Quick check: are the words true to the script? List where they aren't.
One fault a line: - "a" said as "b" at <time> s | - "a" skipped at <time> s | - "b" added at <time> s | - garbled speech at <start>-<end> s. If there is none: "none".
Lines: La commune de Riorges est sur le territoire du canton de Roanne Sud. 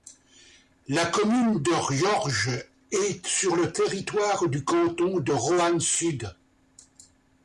none